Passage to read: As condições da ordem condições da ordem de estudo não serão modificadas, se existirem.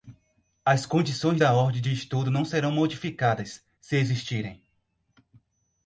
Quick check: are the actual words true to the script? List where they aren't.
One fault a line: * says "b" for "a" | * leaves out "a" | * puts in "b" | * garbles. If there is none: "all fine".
* leaves out "condições da ordem"